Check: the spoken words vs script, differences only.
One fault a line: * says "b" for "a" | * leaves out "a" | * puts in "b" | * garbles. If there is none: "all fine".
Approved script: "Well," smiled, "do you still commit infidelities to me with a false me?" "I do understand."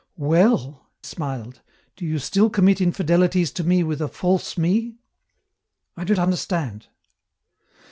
all fine